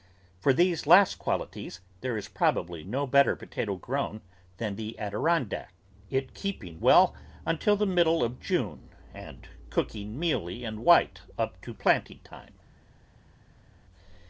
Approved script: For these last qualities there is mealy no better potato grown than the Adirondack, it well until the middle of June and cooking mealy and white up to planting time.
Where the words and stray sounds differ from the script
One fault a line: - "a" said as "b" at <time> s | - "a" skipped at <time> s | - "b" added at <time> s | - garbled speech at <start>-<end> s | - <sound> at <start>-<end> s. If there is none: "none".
- "mealy" said as "probably" at 2.3 s
- "keeping" added at 6.3 s